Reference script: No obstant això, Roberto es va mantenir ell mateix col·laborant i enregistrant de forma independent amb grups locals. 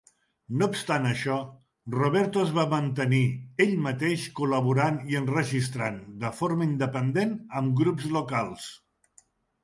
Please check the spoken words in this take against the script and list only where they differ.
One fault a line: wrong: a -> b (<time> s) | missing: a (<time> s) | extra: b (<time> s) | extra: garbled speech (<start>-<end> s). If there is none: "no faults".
no faults